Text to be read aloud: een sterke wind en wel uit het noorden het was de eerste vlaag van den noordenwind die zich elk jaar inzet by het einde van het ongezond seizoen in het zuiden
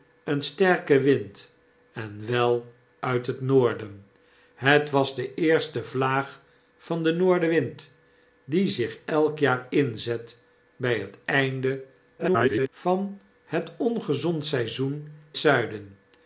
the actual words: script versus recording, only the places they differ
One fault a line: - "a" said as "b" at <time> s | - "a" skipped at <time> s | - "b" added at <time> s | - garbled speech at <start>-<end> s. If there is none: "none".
- garbled speech at 12.2-12.7 s
- "in het" skipped at 15.1 s